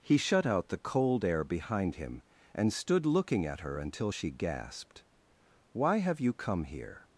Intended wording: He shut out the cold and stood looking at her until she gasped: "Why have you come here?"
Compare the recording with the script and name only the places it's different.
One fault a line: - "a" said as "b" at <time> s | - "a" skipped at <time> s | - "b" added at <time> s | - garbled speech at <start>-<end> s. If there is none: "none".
- "air behind him" added at 1.2 s